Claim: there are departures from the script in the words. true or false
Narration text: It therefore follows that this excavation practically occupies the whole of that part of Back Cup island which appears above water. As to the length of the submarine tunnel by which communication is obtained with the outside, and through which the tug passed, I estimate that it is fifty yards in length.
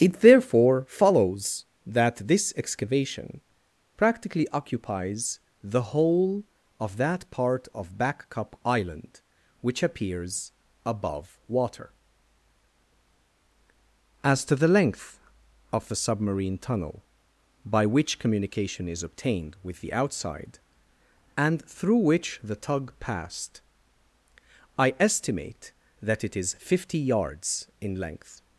false